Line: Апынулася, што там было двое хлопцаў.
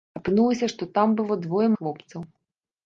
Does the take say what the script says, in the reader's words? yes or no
yes